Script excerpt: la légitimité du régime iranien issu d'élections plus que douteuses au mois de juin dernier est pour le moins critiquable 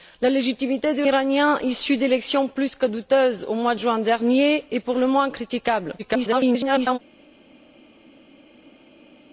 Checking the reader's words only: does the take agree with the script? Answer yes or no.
no